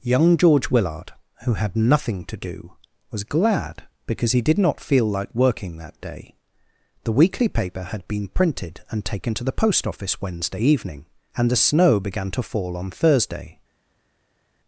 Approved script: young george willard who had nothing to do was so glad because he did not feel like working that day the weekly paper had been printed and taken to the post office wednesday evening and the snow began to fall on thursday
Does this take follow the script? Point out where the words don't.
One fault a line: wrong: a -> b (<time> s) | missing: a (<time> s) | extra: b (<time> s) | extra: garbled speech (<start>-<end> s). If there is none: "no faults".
missing: so (3.2 s)